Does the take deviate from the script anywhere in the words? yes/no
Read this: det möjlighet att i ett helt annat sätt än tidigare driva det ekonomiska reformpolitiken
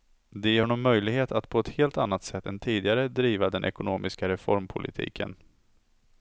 yes